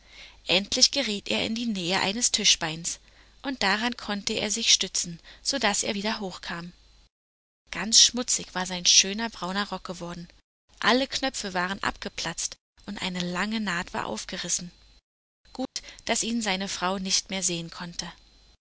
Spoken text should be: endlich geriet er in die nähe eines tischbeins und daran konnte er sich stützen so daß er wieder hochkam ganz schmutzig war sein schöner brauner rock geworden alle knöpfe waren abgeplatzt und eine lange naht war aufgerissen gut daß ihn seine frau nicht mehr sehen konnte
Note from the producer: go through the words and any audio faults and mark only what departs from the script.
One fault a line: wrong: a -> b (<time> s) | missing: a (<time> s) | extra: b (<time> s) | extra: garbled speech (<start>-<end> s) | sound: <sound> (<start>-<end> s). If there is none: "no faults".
sound: dropout (15.7-15.8 s)